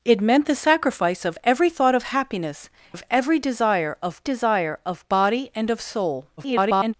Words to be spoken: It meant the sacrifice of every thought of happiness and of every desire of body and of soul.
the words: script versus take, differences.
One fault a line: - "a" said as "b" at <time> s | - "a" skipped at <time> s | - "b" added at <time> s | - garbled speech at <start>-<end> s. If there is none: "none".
- "and" skipped at 2.7 s
- "desire of" added at 4.2 s
- garbled speech at 6.4-6.9 s